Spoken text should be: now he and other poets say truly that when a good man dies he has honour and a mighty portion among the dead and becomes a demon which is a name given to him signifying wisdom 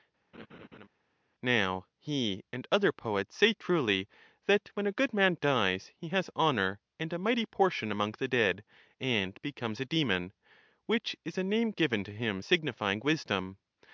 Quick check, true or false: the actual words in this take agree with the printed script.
true